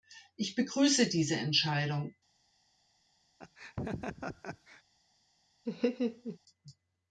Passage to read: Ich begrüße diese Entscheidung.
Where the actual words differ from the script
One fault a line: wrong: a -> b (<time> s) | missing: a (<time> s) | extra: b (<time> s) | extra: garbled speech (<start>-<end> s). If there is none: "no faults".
no faults